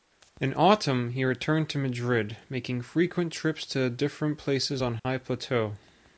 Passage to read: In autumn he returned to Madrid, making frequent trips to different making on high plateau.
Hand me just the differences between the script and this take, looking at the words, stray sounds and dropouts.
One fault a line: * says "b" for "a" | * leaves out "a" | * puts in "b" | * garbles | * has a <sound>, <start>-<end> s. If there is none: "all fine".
* says "places" for "making"
* has a dropout, 5.0-5.1 s